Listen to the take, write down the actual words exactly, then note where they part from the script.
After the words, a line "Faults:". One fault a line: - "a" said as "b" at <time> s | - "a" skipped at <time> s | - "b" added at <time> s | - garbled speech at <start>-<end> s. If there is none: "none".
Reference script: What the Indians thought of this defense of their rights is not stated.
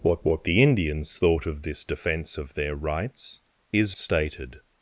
What what the Indians thought of this defense of their rights is stated.
Faults:
- "what" added at 0.2 s
- "not" skipped at 4.0 s